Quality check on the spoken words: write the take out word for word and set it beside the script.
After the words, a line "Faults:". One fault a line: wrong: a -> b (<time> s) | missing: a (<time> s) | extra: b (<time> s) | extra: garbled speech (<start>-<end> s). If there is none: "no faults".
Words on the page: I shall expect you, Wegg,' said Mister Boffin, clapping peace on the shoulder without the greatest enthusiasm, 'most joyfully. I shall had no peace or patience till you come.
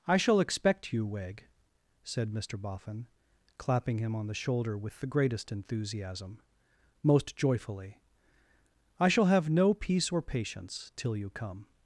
I shall expect you, Wegg,' said Mister Boffin, clapping him on the shoulder with the greatest enthusiasm, 'most joyfully. I shall have no peace or patience till you come.
Faults:
wrong: peace -> him (4.0 s)
wrong: without -> with (4.8 s)
wrong: had -> have (9.2 s)